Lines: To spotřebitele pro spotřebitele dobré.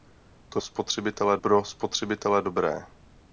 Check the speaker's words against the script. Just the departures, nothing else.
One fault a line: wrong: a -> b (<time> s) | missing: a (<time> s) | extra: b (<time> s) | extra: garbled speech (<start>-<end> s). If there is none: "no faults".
no faults